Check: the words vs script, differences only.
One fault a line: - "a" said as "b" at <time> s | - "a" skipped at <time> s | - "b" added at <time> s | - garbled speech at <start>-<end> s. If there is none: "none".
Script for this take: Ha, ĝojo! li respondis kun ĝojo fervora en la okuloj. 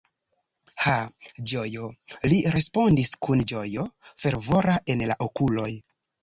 none